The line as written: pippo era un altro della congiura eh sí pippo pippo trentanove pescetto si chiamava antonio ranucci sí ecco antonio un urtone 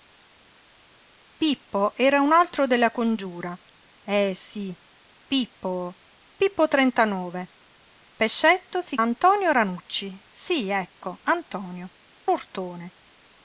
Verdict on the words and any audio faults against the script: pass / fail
fail